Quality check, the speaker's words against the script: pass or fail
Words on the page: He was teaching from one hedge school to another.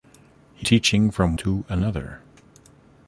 fail